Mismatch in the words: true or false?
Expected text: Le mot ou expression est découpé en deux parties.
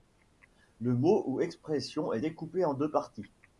false